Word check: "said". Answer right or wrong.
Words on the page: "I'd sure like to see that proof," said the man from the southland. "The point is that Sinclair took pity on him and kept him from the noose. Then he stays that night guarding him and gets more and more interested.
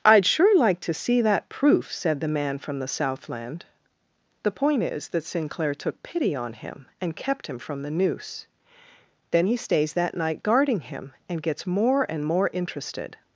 right